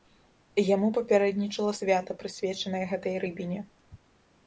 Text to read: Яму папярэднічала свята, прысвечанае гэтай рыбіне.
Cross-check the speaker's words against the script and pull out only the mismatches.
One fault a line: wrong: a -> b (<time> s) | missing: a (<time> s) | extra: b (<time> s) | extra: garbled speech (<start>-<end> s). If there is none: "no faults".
no faults